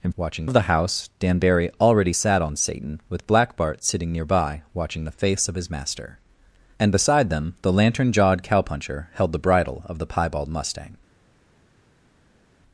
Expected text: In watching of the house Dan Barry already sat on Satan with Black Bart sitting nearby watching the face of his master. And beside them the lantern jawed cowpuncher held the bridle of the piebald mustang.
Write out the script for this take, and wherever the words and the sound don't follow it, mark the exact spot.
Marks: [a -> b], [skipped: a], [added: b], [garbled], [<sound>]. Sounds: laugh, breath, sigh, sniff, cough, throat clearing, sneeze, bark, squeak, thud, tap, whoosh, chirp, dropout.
In watching of the house Dan Barry already sat on Satan with Black Bart sitting nearby watching the face of his master. And beside them the lantern jawed cowpuncher held the bridle of the piebald mustang.